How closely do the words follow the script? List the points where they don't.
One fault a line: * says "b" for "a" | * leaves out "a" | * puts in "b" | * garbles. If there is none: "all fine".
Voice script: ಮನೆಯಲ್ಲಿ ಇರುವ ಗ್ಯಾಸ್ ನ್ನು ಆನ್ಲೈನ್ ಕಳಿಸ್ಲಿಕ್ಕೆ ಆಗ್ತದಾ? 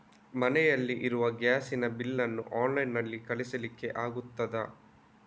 * puts in "ನ ಬಿಲ್"
* puts in "ನಲ್ಲಿ"